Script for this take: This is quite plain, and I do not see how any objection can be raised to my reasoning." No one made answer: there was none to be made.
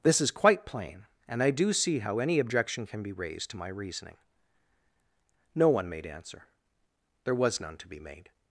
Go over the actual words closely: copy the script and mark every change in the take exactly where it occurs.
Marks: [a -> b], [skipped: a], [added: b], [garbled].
This is quite plain, and I do [skipped: not] see how any objection can be raised to my reasoning." No one made answer: there was none to be made.